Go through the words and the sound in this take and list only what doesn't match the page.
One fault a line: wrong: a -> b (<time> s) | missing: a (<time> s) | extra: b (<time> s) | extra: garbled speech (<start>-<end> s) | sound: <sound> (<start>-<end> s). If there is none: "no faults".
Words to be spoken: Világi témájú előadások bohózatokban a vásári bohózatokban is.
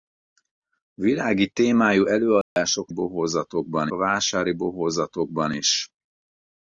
sound: dropout (2.4-2.6 s)